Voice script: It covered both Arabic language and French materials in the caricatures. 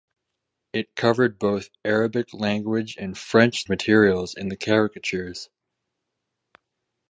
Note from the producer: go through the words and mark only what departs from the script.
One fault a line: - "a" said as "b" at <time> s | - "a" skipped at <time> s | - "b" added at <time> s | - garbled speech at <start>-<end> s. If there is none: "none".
none